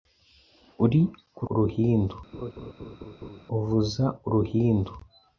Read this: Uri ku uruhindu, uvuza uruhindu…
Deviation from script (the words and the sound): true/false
true